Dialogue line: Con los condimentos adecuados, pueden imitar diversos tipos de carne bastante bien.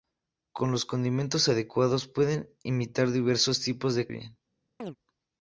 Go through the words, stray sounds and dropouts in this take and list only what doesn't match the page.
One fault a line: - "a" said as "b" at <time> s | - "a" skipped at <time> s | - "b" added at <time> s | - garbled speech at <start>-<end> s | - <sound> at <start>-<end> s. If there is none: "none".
- "carne bastante" skipped at 4.1 s
- chirp at 4.8-5.0 s